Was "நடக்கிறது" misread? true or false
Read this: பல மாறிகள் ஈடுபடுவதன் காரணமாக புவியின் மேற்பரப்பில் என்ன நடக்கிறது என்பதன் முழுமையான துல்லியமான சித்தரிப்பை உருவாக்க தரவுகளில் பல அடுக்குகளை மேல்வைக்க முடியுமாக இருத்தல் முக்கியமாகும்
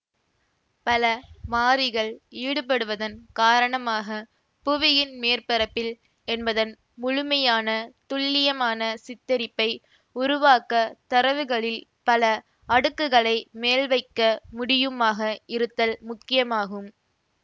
true